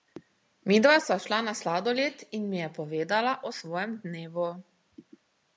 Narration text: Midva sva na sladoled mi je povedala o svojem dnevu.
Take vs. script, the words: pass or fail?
fail